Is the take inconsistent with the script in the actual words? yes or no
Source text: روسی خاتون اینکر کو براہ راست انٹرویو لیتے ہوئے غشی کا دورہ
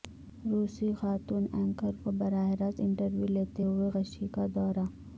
no